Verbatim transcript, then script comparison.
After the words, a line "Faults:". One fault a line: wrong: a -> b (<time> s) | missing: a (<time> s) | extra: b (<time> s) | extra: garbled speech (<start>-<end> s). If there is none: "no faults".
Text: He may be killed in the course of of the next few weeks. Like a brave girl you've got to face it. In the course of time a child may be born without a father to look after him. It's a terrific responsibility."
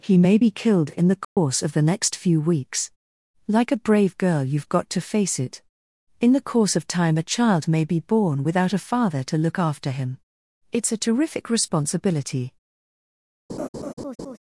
He may be killed in the course of the next few weeks. Like a brave girl you've got to face it. In the course of time a child may be born without a father to look after him. It's a terrific responsibility."
Faults:
missing: of (1.7 s)